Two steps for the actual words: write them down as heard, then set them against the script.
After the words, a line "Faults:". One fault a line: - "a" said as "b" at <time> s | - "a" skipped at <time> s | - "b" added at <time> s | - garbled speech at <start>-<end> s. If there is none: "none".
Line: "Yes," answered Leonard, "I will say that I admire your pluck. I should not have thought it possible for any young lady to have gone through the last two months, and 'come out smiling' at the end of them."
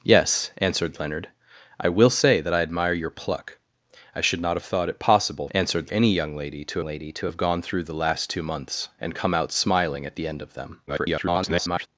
"Yes," answered Leonard, "I will say that I admire your pluck. I should not have thought it possible answered any young lady to lady to have gone through the last two months, and 'come out smiling' at the end of them." [garbled]
Faults:
- "for" said as "answered" at 5.5 s
- "lady to" added at 6.8 s
- garbled speech at 10.9-11.9 s